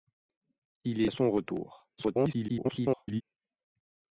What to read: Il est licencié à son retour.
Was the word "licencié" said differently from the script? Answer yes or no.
yes